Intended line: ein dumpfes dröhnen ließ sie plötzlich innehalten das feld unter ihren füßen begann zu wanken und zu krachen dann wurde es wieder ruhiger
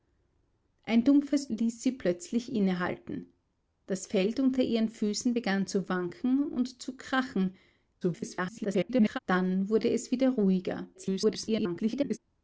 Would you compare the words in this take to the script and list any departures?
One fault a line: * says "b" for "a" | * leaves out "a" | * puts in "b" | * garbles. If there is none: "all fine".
* leaves out "dröhnen"
* garbles
* garbles